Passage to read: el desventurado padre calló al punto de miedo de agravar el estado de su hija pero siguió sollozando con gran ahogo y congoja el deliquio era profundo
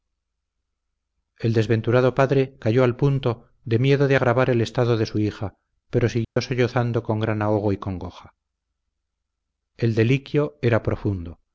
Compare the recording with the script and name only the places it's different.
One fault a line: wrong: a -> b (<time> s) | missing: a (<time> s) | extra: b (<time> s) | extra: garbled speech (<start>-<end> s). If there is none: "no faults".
no faults